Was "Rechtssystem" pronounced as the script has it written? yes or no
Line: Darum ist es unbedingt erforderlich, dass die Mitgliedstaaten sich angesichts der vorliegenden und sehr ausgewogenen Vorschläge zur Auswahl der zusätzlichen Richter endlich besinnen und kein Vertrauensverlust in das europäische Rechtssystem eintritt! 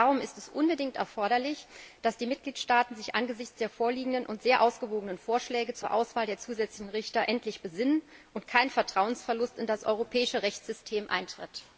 yes